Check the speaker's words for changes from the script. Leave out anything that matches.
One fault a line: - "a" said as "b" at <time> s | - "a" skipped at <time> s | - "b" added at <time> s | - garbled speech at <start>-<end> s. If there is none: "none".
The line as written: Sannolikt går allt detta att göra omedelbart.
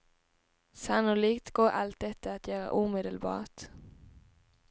none